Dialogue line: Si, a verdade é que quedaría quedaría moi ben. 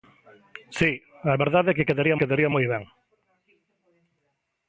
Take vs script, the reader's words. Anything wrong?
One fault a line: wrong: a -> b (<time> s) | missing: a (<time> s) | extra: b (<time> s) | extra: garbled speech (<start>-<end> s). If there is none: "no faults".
no faults